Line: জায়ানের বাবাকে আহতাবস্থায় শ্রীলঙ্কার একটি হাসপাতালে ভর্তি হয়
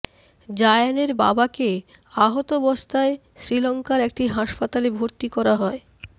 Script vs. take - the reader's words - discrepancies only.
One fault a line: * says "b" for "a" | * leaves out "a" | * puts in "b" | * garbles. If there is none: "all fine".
* puts in "করা"